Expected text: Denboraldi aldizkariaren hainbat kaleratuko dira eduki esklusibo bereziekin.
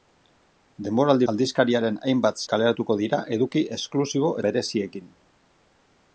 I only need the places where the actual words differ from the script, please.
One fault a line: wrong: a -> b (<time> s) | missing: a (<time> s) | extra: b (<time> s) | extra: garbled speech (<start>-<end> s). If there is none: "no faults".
no faults